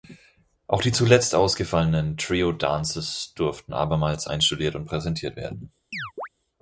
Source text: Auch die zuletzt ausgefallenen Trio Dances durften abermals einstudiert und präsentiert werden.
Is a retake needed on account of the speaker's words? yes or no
no